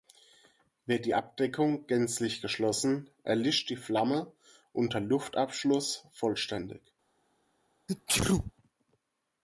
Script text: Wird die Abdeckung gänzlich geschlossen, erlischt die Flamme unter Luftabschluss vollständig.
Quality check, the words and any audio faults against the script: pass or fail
fail